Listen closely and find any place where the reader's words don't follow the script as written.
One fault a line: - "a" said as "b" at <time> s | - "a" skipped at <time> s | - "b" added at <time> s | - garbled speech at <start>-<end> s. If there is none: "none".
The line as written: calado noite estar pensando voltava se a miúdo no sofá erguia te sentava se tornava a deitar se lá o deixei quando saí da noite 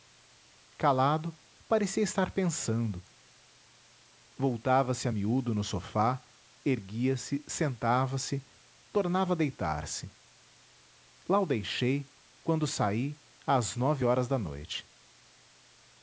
- "noite" said as "parecia" at 1.7 s
- "te" said as "se" at 7.2 s
- "às nove horas" added at 13.4 s